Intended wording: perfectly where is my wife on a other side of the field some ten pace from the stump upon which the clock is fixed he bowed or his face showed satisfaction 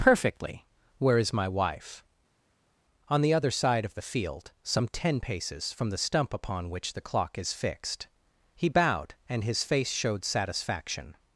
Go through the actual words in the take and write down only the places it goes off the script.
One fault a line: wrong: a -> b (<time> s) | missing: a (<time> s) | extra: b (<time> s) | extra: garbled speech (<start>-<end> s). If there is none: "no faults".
wrong: a -> the (3.2 s)
wrong: pace -> paces (5.2 s)
wrong: or -> and (9.3 s)